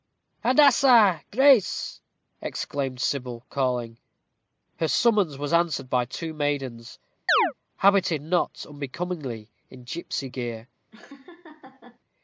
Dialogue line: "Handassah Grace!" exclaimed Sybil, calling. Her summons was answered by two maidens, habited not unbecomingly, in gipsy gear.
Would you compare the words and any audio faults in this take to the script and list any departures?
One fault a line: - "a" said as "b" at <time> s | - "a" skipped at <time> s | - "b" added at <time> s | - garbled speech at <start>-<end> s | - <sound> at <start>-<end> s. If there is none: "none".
- chirp at 7.3-7.5 s
- laugh at 10.9-12.0 s